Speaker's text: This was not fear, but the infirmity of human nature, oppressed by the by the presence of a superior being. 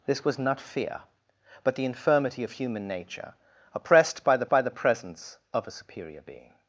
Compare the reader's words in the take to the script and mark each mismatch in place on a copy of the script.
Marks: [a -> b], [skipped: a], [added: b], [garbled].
This was not fear, but the infirmity of human nature, oppressed by the by the presence of a superior being.